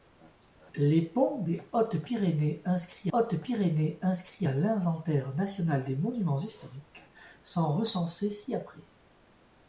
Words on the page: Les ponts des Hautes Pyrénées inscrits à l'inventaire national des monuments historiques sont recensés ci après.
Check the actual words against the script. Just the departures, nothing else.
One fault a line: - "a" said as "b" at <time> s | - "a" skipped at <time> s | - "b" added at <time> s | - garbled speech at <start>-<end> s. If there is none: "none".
- "Hautes Pyrénées inscrits" added at 3.1 s